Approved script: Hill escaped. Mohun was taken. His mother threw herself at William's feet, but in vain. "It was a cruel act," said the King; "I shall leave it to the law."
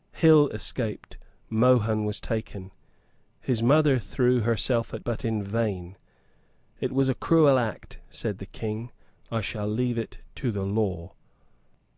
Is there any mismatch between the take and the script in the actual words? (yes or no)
yes